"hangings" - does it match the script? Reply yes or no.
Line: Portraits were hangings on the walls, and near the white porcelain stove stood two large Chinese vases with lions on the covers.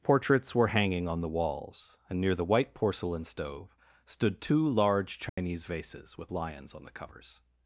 no